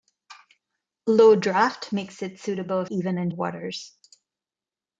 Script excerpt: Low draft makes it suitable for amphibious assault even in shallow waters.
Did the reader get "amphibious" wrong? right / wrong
wrong